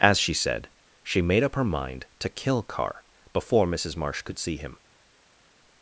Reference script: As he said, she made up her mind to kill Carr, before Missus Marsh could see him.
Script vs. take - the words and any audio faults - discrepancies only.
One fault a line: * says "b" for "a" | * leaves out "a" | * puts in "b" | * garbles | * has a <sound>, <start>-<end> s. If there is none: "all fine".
* says "she" for "he"